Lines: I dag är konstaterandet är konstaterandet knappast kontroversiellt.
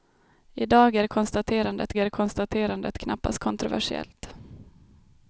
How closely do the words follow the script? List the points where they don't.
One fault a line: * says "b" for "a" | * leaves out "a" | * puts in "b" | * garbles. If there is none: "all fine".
all fine